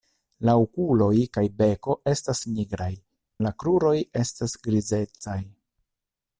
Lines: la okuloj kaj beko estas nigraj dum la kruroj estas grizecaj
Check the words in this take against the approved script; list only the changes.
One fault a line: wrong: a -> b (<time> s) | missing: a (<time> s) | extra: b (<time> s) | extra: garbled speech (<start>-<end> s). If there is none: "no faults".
missing: dum (2.9 s)